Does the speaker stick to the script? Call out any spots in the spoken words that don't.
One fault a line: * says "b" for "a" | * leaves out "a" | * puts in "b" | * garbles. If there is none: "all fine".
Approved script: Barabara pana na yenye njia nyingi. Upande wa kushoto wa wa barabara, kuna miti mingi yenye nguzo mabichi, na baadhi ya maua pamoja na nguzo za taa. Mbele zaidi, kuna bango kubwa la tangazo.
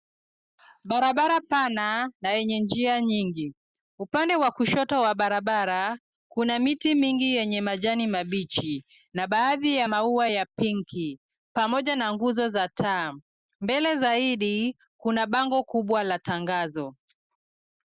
* leaves out "wa"
* says "majani" for "nguzo"
* puts in "ya pinki"